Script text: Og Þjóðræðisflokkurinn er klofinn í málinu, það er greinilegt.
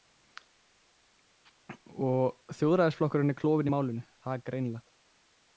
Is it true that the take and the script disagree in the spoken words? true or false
false